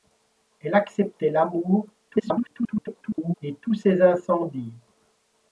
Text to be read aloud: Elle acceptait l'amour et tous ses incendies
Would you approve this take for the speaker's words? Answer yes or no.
no